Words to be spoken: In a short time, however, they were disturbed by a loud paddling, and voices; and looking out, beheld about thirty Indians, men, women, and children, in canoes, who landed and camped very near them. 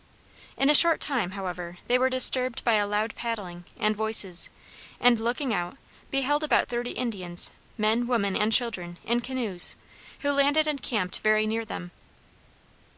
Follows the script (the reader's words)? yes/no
yes